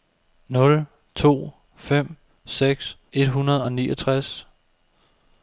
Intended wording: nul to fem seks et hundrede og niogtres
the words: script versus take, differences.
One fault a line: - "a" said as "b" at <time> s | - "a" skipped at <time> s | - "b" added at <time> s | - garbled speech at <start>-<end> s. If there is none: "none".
none